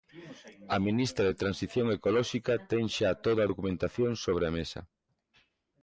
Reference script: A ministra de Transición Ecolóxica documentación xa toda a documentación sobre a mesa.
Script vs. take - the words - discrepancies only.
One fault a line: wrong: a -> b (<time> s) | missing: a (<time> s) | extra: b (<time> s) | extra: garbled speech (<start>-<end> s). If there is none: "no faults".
wrong: documentación -> ten (2.7 s)